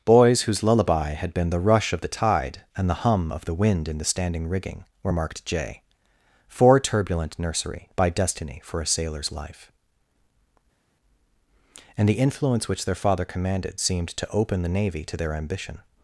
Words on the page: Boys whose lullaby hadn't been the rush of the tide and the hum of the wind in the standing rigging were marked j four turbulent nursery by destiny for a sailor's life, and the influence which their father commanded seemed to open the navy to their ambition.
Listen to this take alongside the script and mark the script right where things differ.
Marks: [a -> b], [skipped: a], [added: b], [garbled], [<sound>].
Boys whose lullaby [hadn't -> had] been the rush of the tide and the hum of the wind in the standing rigging were marked j four turbulent nursery by destiny for a sailor's life, and the influence which their father commanded seemed to open the navy to their ambition.